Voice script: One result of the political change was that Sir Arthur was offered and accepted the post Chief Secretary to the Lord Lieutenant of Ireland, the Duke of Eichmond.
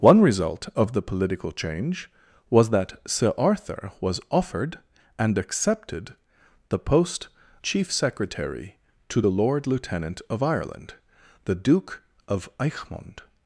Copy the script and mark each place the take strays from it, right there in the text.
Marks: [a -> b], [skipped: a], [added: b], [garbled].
One result of the political change was that Sir Arthur was offered and accepted the post Chief Secretary to the Lord Lieutenant of Ireland, the Duke of Eichmond.